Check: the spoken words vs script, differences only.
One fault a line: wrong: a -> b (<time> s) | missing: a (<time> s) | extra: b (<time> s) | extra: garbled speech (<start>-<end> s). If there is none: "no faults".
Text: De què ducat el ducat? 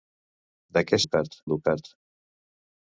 no faults